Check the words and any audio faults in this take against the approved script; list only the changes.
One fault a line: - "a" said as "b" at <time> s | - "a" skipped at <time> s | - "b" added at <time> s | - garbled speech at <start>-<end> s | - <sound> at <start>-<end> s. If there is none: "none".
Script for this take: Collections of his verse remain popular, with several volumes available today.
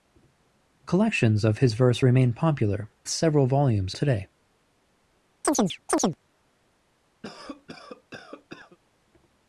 - "with" skipped at 2.9 s
- "available" skipped at 3.9 s
- chirp at 5.4-6.2 s
- cough at 7.2-8.8 s